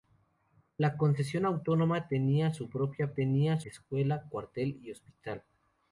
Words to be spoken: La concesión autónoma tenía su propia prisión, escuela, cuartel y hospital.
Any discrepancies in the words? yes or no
yes